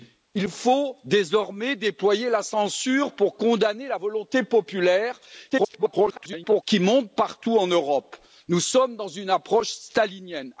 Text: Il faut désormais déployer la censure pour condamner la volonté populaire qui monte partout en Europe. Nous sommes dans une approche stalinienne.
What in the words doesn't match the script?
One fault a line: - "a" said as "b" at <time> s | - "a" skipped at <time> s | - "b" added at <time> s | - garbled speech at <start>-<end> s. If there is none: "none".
- garbled speech at 5.5-6.6 s